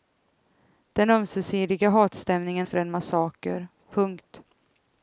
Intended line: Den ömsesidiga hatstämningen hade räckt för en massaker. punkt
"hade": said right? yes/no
no